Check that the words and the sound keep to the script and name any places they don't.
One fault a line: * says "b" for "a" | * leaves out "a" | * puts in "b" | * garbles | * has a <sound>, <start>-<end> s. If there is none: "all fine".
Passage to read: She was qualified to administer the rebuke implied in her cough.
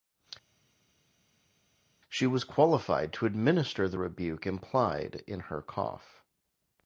all fine